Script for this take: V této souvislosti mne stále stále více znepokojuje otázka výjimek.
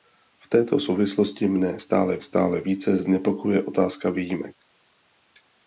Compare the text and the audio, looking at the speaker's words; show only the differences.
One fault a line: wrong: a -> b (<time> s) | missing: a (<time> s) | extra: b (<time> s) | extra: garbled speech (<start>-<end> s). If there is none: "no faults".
no faults